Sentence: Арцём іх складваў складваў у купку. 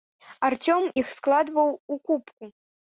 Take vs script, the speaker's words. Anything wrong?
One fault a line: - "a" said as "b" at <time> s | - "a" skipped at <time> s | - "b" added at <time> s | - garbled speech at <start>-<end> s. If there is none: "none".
- "складваў" skipped at 1.7 s